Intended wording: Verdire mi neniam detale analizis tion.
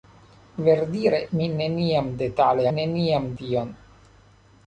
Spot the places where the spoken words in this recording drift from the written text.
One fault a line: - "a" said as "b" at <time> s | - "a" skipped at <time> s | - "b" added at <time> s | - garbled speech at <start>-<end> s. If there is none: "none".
- "analizis" said as "neniam" at 2.8 s